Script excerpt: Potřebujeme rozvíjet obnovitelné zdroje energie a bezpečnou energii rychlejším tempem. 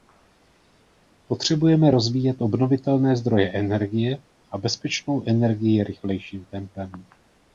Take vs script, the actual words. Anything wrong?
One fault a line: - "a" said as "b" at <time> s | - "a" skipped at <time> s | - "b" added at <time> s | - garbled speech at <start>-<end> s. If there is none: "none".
none